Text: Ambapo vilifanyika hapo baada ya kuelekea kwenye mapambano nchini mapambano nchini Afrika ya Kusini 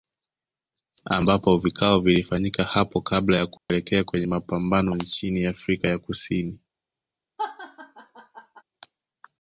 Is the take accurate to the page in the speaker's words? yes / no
no